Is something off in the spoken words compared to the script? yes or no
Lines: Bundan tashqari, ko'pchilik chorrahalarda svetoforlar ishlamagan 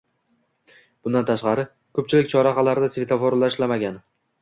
no